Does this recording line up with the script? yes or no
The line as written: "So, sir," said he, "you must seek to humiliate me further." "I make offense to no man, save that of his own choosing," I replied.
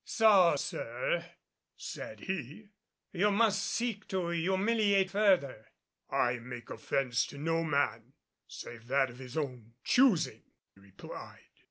no